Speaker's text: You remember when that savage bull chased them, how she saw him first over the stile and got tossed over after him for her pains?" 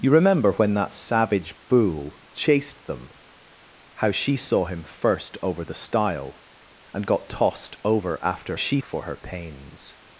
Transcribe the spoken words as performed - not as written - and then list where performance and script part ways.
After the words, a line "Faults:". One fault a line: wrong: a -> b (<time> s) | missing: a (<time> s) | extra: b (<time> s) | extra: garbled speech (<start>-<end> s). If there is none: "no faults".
You remember when that savage bull chased them, how she saw him first over the stile and got tossed over after she for her pains?"
Faults:
wrong: him -> she (8.5 s)